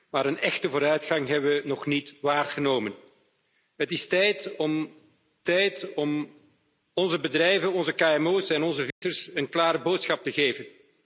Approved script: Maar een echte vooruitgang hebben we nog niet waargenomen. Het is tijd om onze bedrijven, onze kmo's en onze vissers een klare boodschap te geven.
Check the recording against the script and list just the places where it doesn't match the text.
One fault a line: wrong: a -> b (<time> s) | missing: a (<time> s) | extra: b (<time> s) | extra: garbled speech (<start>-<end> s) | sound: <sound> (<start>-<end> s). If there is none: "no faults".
extra: tijd om (5.4 s)
sound: dropout (8.9-9.0 s)